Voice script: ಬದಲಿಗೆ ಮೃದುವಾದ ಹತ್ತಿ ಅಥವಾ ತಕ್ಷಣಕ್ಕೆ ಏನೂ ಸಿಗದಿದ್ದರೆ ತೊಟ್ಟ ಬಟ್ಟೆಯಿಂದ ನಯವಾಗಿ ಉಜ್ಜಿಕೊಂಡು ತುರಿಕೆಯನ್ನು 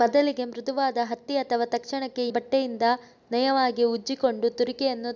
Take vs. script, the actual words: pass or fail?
fail